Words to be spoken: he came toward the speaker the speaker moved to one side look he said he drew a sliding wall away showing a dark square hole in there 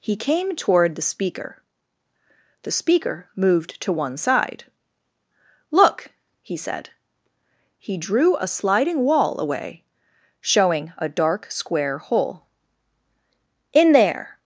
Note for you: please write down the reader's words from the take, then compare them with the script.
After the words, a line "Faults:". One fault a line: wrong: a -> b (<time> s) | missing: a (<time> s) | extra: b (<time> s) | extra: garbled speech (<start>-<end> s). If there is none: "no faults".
he came toward the speaker the speaker moved to one side look he said he drew a sliding wall away showing a dark square hole in there
Faults:
no faults